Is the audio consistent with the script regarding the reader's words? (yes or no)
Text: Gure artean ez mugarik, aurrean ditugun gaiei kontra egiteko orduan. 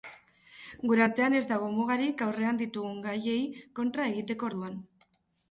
no